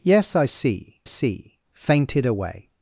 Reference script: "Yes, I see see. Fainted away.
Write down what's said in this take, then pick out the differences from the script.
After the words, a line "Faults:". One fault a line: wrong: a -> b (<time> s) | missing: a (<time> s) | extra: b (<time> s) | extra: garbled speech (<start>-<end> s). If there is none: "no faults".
"Yes, I see see. Fainted away.
Faults:
no faults